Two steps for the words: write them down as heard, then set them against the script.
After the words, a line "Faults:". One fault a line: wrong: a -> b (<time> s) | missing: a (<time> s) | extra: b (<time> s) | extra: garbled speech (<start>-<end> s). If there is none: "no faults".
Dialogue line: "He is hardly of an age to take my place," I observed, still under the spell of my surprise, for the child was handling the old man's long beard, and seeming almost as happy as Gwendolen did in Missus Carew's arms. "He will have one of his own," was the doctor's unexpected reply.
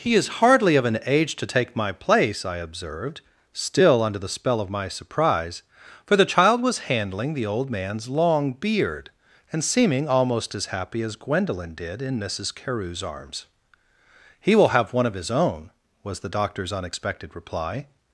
"He is hardly of an age to take my place," I observed, still under the spell of my surprise, for the child was handling the old man's long beard, and seeming almost as happy as Gwendolen did in Missus Carew's arms. "He will have one of his own," was the doctor's unexpected reply.
Faults:
no faults